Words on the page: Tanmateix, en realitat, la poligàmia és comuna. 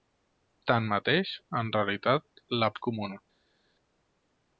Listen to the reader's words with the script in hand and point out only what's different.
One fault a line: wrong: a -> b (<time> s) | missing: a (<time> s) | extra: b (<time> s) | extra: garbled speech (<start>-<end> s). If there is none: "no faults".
missing: poligàmia (2.7 s)